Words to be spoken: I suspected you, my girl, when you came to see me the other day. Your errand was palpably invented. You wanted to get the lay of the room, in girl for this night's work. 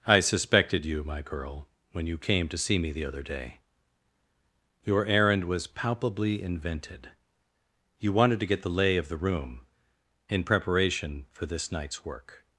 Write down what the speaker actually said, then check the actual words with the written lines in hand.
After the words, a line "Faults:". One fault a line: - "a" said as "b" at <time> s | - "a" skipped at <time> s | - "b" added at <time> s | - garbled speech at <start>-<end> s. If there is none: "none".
I suspected you, my girl, when you came to see me the other day. Your errand was palpably invented. You wanted to get the lay of the room, in preparation for this night's work.
Faults:
- "girl" said as "preparation" at 10.4 s